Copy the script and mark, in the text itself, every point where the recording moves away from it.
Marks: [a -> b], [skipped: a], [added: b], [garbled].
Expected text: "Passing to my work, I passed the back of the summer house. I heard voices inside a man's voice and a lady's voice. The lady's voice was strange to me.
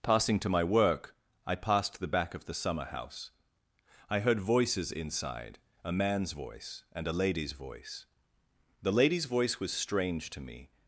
"Passing to my work, I passed the back of the summer house. I heard voices inside a man's voice and a lady's voice. The lady's voice was strange to me.